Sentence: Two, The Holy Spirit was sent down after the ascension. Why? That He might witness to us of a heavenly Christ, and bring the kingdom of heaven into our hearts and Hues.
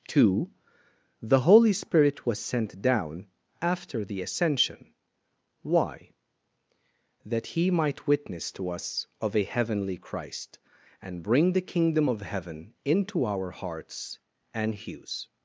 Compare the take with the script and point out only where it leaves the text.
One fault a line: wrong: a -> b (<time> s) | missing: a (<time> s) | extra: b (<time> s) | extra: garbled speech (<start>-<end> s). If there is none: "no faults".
no faults